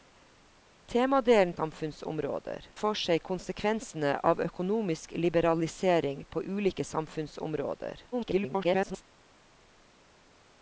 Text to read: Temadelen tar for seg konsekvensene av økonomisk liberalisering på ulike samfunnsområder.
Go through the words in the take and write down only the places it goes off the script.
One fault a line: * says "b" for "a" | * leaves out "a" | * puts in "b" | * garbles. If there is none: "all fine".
* says "samfunnsområder" for "tar"
* garbles